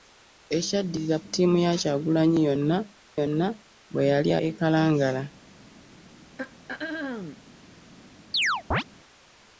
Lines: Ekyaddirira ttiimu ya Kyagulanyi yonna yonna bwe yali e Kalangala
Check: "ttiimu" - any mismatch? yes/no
no